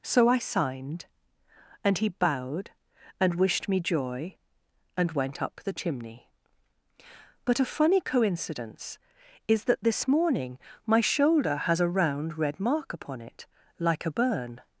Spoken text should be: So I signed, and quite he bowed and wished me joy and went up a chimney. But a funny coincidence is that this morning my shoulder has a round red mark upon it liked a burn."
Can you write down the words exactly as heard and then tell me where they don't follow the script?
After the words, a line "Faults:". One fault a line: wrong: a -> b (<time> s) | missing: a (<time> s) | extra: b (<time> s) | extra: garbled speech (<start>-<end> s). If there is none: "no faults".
So I signed, and he bowed and wished me joy and went up the chimney. But a funny coincidence is that this morning my shoulder has a round red mark upon it like a burn."
Faults:
missing: quite (2.0 s)
wrong: a -> the (5.6 s)
wrong: liked -> like (13.8 s)